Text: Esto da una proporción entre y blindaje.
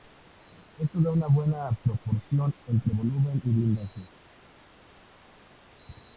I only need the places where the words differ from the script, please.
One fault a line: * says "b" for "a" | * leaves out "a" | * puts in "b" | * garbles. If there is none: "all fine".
* puts in "buena"
* puts in "volumen"